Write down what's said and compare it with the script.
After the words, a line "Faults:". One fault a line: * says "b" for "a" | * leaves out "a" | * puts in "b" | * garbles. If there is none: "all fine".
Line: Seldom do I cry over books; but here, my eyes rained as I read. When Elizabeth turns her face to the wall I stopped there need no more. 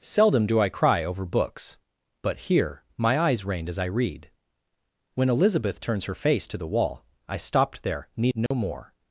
Seldom do I cry over books; but here, my eyes rained as I read. When Elizabeth turns her face to the wall I stopped there need no more.
Faults:
all fine